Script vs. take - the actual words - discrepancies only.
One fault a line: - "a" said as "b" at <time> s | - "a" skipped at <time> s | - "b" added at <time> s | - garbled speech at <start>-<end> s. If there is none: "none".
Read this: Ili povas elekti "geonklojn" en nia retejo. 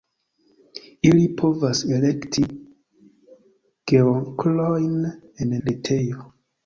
- "nia" skipped at 5.6 s